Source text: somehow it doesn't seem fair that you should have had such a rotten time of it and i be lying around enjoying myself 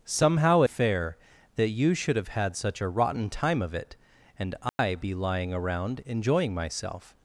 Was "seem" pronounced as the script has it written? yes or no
no